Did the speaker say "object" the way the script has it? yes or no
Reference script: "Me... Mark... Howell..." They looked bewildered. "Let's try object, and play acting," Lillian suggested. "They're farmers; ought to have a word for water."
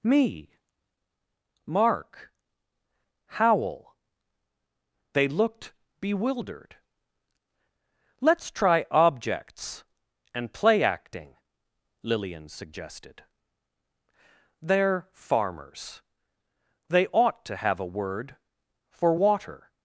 no